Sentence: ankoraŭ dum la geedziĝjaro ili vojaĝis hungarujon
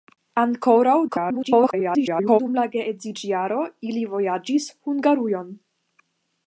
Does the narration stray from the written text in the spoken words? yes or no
yes